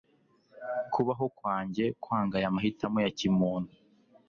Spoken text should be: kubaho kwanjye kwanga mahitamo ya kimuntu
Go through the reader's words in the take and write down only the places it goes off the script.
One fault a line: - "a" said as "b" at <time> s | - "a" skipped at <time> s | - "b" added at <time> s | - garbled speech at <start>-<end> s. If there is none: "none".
- "aya" added at 2.4 s